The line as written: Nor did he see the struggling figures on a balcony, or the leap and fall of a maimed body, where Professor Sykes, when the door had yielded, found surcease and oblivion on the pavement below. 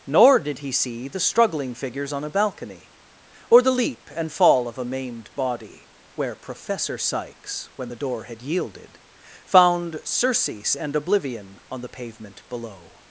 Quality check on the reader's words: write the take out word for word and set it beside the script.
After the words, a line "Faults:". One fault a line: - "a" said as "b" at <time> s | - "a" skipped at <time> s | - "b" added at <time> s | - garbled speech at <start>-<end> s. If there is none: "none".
Nor did he see the struggling figures on a balcony, or the leap and fall of a maimed body, where Professor Sykes, when the door had yielded, found surcease and oblivion on the pavement below.
Faults:
none